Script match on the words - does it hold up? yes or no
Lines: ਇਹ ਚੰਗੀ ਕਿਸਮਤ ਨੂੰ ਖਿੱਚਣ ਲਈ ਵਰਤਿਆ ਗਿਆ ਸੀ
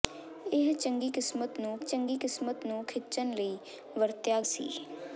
no